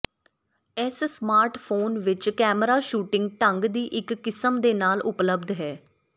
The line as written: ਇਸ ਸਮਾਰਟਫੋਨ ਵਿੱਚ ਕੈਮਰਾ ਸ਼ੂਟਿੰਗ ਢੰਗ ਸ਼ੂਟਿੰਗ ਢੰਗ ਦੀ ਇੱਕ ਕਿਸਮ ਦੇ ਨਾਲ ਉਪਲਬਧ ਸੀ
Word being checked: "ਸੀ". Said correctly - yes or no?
no